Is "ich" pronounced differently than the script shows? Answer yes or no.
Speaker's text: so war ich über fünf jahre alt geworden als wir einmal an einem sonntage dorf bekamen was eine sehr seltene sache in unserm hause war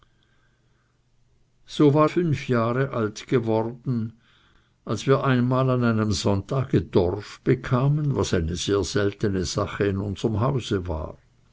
yes